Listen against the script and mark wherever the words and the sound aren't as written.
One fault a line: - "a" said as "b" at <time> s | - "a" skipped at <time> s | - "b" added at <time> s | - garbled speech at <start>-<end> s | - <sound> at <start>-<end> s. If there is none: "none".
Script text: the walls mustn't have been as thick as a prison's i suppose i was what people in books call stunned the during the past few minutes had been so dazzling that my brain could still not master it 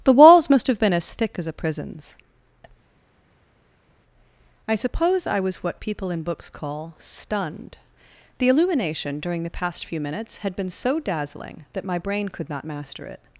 - "mustn't" said as "must" at 0.5 s
- "illumination" added at 8.5 s
- "still" skipped at 12.5 s